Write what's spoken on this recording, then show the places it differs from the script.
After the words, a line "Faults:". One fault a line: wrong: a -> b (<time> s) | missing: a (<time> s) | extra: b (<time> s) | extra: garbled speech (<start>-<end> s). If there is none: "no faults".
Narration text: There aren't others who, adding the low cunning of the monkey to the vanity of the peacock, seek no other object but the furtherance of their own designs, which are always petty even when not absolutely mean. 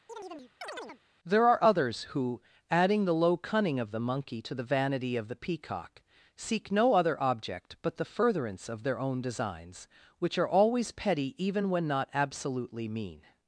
There are others who, adding the low cunning of the monkey to the vanity of the peacock, seek no other object but the furtherance of their own designs, which are always petty even when not absolutely mean.
Faults:
wrong: aren't -> are (1.5 s)